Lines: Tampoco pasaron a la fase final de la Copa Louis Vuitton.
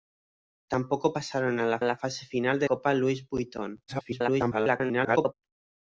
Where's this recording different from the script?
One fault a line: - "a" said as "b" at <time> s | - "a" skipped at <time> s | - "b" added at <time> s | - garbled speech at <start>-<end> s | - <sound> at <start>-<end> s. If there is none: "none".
- "la" added at 1.8 s
- "la" skipped at 2.7 s
- garbled speech at 3.9-5.3 s